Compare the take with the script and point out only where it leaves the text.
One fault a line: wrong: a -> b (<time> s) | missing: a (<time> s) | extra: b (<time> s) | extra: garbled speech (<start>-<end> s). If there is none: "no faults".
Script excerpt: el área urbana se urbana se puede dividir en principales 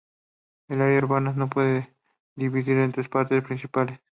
missing: urbana se (1.5 s)
extra: tres partes (2.9 s)